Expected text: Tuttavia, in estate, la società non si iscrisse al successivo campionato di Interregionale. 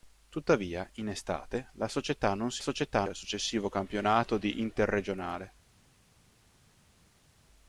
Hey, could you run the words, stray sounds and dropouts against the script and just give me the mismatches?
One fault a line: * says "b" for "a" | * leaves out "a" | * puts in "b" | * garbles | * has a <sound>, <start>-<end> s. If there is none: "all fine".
* says "società" for "iscrisse"